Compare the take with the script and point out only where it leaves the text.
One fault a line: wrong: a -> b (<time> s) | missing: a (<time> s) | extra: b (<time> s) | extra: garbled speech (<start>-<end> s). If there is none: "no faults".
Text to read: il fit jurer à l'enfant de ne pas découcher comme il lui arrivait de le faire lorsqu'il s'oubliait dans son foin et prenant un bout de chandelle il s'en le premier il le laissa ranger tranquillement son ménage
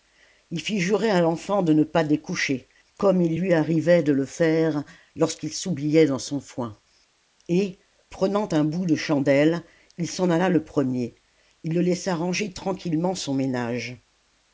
extra: alla (10.3 s)